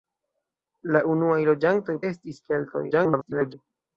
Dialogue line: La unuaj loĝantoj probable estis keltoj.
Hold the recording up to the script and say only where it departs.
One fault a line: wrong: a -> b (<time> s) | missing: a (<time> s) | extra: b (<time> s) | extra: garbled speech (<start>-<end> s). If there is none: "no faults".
missing: probable (1.9 s)
extra: garbled speech (2.9-3.5 s)